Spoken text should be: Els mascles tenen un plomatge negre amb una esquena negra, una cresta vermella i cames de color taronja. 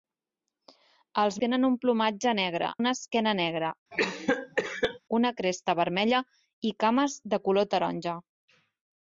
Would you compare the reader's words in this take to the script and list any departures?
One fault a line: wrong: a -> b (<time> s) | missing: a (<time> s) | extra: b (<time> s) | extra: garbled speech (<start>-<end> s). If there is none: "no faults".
missing: mascles (1.4 s)
missing: amb (2.7 s)